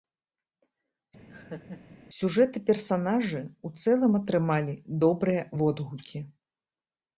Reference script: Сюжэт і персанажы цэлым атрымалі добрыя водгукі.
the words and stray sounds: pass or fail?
fail